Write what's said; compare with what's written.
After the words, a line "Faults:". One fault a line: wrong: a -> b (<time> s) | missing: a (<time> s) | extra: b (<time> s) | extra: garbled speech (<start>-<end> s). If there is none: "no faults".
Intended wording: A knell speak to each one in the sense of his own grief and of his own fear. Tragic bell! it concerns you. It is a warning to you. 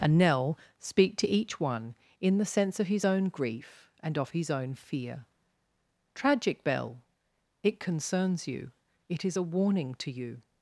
A knell speak to each one in the sense of his own grief and of his own fear. Tragic bell! it concerns you. It is a warning to you.
Faults:
no faults